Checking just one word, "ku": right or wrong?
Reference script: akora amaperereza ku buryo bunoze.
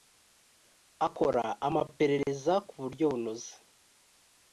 right